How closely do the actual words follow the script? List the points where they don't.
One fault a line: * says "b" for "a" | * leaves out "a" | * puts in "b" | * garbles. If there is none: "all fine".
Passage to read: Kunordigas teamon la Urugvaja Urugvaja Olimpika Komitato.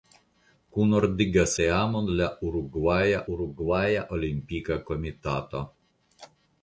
all fine